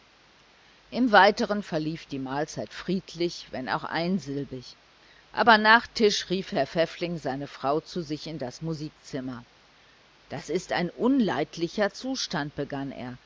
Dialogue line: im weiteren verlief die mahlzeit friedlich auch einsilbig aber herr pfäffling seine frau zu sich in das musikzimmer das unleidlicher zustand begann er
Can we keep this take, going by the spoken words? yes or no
no